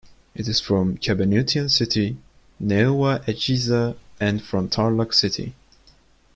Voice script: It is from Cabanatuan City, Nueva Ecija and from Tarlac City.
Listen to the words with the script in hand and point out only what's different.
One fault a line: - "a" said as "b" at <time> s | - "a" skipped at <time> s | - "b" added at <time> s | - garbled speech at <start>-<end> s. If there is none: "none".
none